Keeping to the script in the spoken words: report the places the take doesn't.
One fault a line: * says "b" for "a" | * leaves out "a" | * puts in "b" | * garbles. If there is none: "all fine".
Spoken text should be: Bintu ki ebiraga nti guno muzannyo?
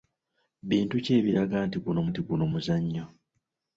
* puts in "nti guno"